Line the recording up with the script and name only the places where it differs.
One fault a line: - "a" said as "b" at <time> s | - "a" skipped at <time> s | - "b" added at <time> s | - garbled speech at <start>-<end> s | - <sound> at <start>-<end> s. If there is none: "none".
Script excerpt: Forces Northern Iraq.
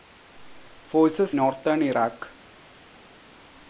none